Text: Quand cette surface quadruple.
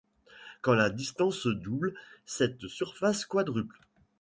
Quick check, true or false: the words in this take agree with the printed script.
false